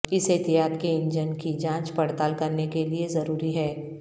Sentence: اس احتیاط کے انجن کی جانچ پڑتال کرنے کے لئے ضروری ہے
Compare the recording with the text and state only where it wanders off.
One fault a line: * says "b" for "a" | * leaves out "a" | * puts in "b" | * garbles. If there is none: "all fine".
all fine